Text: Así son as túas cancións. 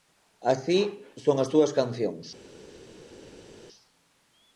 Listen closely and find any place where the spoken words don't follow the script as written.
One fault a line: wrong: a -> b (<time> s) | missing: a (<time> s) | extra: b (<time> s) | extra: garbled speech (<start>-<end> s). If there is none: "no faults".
no faults